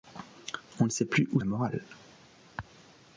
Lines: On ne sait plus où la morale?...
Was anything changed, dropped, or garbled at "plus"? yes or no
no